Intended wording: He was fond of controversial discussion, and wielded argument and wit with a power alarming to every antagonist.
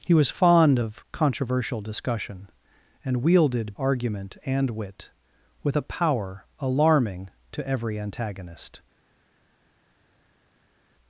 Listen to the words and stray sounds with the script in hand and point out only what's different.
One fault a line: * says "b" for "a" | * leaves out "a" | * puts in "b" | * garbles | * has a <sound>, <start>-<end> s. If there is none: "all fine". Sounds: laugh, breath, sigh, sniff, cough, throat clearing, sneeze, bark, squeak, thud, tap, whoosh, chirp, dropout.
all fine